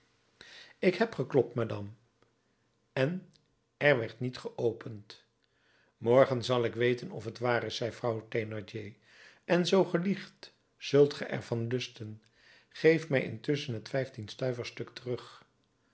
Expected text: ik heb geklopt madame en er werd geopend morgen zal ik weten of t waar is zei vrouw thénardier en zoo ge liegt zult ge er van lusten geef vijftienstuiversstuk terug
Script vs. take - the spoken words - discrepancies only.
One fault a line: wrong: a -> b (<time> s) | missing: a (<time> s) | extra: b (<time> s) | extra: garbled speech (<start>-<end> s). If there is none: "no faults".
extra: niet (4.2 s)
extra: mij intusschen het (13.1 s)